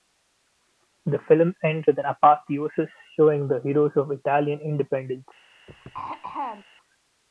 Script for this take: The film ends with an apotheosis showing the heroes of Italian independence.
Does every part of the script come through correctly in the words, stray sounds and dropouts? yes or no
no